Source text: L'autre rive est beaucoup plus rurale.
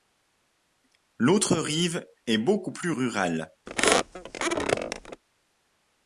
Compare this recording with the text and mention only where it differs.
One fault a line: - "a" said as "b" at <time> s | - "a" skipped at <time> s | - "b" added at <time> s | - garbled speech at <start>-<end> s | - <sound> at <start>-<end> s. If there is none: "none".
- squeak at 3.7-5.2 s